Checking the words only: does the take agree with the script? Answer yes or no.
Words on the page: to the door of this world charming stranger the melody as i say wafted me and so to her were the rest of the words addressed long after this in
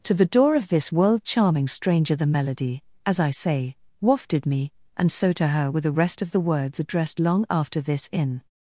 yes